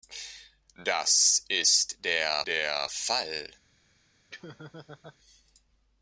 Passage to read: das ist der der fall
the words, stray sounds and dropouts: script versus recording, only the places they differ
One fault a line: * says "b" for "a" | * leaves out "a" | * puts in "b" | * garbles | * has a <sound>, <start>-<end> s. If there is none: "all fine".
* has a laugh, 4.3-5.2 s